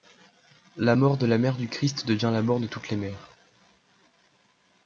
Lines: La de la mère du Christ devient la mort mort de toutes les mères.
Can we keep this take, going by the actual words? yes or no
no